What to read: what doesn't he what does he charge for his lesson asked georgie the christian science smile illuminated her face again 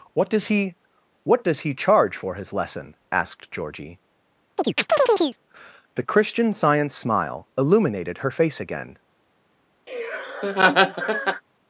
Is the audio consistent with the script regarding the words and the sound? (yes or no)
no